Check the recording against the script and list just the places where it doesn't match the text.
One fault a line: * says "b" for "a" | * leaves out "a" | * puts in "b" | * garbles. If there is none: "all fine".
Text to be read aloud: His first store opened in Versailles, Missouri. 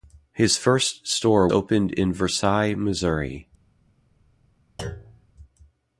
all fine